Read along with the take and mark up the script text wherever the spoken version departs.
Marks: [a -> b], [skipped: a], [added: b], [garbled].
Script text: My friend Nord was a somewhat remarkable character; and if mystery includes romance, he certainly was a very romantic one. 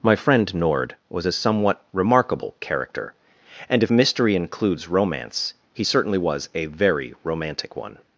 My friend Nord was a somewhat remarkable character; and if mystery includes romance, he certainly was a very romantic one.